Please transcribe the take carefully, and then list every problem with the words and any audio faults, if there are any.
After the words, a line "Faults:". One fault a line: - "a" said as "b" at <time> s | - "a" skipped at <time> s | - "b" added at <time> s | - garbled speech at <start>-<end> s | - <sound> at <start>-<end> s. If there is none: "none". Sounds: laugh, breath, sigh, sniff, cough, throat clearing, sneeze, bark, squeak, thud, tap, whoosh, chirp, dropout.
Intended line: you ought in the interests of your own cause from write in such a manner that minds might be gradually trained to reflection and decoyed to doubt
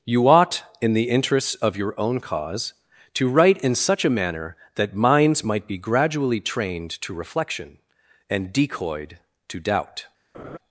you ought in the interests of your own cause to write in such a manner that minds might be gradually trained to reflection and decoyed to doubt
Faults:
- "from" said as "to" at 3.1 s
- laugh at 10.3-10.6 s